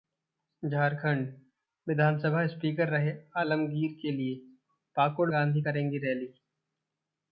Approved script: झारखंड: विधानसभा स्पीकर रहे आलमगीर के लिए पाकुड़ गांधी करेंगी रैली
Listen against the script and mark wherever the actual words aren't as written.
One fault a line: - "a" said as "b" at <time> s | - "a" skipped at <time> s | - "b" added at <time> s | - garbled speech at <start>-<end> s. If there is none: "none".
none